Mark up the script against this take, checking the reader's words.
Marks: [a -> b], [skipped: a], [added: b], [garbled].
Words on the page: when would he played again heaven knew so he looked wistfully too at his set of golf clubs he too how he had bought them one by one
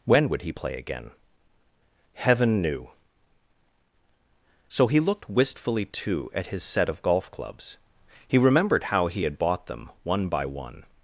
when would he [played -> play] again heaven knew so he looked wistfully too at his set of golf clubs he [too -> remembered] how he had bought them one by one